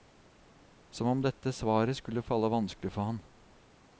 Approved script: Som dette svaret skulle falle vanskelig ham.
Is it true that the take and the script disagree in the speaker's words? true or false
true